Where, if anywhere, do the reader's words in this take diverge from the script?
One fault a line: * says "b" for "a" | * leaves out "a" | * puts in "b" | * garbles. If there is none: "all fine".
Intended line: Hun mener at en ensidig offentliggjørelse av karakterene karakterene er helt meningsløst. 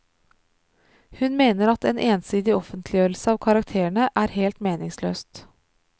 * leaves out "karakterene"